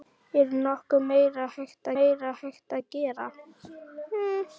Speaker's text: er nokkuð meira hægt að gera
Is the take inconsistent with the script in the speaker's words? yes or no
yes